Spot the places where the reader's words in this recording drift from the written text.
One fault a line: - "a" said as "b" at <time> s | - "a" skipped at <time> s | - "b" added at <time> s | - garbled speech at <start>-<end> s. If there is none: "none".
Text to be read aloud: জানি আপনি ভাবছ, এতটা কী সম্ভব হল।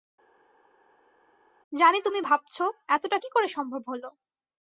- "আপনি" said as "তুমি" at 2.0 s
- "করে" added at 3.3 s